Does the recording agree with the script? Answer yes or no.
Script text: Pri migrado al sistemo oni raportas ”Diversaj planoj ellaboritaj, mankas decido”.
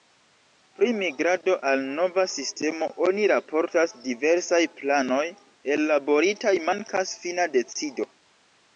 no